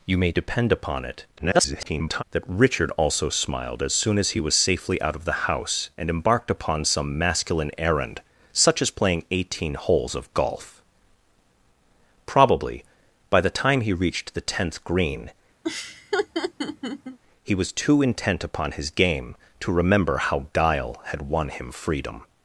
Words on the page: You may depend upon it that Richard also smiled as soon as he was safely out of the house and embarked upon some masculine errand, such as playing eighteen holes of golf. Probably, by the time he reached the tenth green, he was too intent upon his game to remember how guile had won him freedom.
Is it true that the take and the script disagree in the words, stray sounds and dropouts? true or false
true